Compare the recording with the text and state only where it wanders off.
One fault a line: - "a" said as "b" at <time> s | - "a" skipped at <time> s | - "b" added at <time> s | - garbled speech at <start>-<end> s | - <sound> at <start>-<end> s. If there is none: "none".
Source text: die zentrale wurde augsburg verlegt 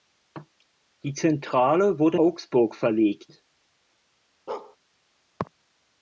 - bark at 4.5-4.8 s